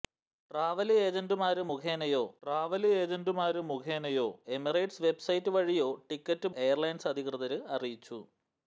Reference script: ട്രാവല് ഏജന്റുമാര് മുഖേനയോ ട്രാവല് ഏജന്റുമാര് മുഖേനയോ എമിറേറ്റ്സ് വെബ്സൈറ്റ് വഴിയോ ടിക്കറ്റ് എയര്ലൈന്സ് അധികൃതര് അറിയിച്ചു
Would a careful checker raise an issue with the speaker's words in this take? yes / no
no